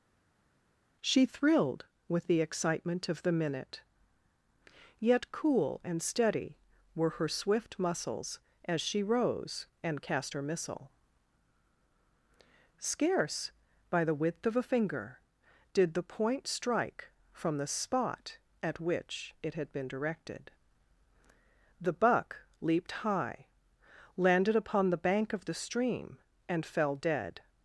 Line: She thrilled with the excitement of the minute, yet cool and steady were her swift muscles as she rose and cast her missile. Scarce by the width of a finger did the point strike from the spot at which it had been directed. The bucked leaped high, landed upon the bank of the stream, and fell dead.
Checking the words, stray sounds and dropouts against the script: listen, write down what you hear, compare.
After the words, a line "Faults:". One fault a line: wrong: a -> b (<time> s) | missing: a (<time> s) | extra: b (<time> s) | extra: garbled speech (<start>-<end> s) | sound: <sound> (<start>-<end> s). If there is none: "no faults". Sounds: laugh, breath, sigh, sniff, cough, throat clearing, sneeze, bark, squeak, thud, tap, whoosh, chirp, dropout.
She thrilled with the excitement of the minute, yet cool and steady were her swift muscles as she rose and cast her missile. Scarce by the width of a finger did the point strike from the spot at which it had been directed. The buck leaped high, landed upon the bank of the stream, and fell dead.
Faults:
wrong: bucked -> buck (21.9 s)